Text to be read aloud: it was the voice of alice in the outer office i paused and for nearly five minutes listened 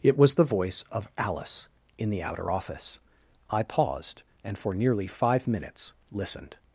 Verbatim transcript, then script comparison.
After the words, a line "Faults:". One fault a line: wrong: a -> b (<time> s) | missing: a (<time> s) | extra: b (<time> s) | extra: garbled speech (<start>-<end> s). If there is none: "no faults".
it was the voice of alice in the outer office i paused and for nearly five minutes listened
Faults:
no faults